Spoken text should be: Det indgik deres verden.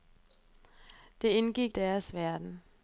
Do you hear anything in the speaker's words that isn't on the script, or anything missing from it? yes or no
no